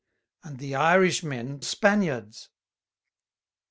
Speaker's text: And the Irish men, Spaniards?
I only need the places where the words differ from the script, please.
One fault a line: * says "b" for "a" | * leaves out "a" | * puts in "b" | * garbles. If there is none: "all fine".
all fine